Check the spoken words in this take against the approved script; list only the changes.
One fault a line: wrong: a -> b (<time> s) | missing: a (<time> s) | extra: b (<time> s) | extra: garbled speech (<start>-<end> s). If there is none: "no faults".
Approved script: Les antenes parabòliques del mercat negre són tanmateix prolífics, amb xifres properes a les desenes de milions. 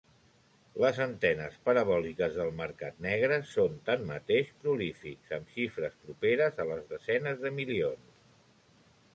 no faults